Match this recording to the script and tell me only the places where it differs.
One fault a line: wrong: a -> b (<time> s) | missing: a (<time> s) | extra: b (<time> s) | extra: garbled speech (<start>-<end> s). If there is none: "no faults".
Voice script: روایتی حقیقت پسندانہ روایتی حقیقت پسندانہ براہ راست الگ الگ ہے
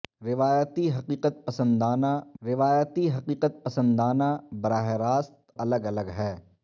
no faults